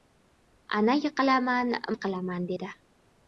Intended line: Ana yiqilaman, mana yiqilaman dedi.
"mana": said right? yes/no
no